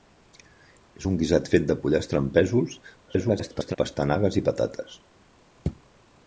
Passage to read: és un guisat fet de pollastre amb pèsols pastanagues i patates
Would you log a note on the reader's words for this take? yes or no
yes